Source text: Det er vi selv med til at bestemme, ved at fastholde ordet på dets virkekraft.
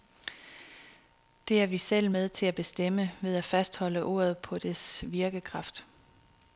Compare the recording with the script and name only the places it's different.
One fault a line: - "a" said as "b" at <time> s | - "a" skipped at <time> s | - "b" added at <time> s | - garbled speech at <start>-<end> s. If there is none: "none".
none